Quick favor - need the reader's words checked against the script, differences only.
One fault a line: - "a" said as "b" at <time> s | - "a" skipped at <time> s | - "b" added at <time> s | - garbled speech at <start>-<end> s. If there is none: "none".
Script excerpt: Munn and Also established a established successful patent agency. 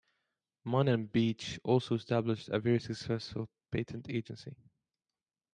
- "Beach" added at 1.1 s
- "established" said as "very" at 2.6 s